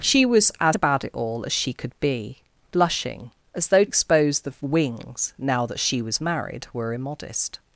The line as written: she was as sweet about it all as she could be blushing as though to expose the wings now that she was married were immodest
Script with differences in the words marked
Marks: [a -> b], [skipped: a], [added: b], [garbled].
she was as [skipped: sweet] about it all as she could be blushing as though [skipped: to] expose the wings now that she was married were immodest